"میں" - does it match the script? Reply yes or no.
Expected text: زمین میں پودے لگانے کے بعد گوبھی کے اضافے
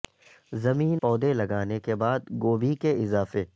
no